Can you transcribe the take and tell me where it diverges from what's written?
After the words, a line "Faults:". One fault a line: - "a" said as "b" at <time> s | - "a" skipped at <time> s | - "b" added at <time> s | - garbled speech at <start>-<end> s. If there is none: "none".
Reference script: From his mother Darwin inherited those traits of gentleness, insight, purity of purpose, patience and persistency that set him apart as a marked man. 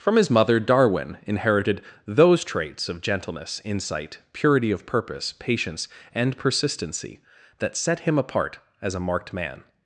From his mother Darwin inherited those traits of gentleness, insight, purity of purpose, patience and persistency that set him apart as a marked man.
Faults:
none